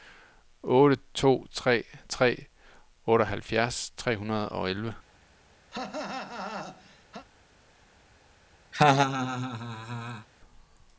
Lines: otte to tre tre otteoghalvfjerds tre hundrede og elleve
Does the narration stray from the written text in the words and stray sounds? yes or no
yes